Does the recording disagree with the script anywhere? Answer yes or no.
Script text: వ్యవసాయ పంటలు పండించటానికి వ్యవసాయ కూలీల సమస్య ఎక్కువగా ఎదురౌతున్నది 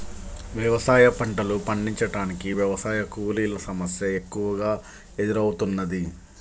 no